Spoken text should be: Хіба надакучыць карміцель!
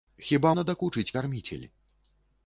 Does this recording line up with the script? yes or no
yes